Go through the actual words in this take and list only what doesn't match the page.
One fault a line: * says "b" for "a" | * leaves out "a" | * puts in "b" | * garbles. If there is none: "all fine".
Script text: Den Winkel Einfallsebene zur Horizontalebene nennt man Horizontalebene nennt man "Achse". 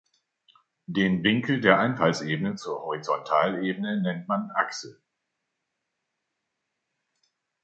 * puts in "der"
* leaves out "Horizontalebene nennt man"